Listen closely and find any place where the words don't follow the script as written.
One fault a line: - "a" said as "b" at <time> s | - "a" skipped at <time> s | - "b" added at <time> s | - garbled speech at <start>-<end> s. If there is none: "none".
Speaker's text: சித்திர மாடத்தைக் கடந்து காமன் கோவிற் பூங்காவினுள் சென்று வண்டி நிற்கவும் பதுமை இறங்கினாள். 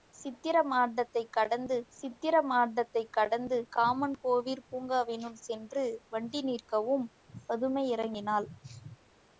- "சித்திர மாடத்தைக் கடந்து" added at 1.9 s